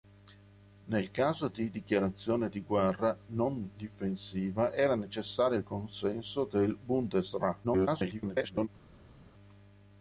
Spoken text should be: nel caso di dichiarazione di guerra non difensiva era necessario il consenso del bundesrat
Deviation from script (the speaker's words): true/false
true